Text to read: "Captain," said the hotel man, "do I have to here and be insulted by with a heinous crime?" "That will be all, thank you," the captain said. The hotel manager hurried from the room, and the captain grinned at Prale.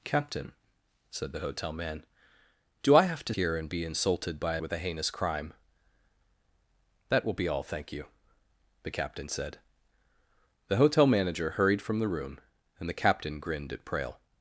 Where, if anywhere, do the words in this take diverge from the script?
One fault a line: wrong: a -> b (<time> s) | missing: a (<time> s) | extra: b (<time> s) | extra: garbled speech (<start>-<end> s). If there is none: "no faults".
no faults